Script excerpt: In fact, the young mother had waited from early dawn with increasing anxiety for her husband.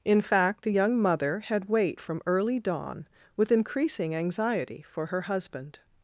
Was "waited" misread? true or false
true